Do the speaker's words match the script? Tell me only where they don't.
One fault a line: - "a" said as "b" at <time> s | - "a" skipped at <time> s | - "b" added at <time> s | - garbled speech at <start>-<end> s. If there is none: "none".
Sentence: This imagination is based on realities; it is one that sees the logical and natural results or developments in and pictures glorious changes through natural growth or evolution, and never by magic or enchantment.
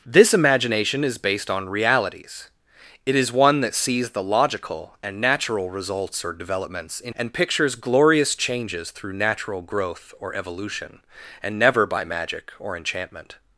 none